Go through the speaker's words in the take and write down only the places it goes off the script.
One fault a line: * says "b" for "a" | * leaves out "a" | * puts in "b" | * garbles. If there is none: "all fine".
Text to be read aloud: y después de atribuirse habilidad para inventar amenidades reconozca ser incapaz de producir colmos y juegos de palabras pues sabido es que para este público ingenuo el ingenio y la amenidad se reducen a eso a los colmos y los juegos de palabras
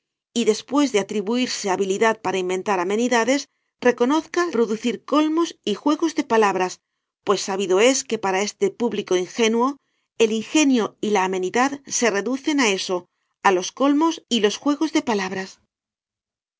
* leaves out "ser incapaz de"